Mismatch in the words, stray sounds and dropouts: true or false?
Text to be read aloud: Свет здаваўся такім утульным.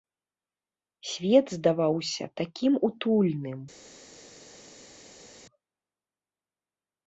false